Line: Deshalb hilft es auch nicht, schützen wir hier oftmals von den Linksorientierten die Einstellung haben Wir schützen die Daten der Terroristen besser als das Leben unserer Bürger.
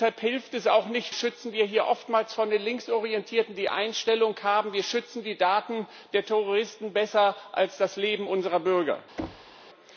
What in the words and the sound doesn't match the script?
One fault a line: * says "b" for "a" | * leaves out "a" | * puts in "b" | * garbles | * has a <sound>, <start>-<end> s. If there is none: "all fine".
* has a thud, 9.2-9.6 s